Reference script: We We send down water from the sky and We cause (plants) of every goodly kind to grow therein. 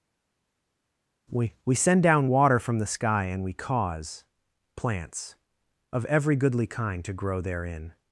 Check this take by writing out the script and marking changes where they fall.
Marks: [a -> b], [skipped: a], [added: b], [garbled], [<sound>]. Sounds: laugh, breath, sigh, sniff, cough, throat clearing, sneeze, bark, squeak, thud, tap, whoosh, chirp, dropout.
We We send down water from the sky and We cause (plants) of every goodly kind to grow therein.